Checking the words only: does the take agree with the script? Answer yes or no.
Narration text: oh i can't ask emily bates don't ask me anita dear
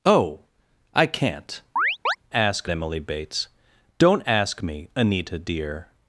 yes